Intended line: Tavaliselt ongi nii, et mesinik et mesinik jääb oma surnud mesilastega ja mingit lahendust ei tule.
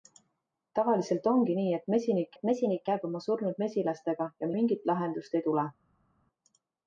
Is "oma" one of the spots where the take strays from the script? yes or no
no